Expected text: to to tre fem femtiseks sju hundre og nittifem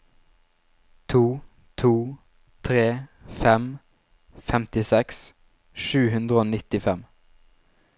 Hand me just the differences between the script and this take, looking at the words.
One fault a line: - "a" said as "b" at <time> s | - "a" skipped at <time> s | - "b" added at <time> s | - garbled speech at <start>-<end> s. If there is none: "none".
none